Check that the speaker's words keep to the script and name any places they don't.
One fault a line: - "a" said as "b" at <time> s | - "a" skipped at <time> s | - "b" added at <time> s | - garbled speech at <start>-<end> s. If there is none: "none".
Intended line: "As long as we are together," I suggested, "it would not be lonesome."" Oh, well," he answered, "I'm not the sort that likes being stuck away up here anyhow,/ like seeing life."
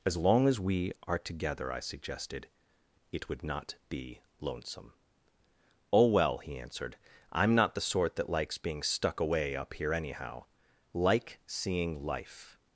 none